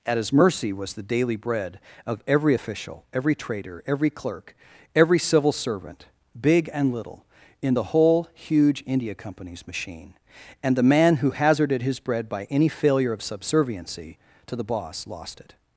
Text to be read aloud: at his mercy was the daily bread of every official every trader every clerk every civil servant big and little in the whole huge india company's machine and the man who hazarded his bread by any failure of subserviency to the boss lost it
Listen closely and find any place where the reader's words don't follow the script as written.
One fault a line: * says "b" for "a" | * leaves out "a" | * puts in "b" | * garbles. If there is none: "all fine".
all fine